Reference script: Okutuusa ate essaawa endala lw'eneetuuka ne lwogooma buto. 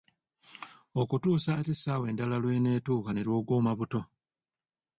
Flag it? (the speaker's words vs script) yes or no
no